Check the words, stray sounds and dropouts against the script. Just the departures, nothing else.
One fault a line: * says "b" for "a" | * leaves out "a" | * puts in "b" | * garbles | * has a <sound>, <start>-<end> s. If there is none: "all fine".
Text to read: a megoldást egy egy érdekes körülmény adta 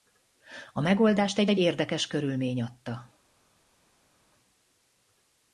all fine